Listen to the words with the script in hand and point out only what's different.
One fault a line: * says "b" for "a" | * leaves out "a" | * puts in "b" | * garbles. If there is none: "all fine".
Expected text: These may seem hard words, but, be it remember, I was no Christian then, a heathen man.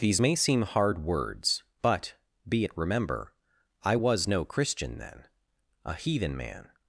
all fine